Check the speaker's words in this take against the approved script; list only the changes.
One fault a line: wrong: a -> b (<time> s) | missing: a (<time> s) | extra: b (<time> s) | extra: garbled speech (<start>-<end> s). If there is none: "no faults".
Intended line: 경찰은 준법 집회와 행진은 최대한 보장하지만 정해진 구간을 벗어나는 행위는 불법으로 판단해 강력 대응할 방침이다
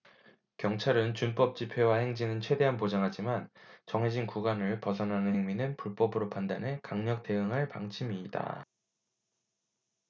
no faults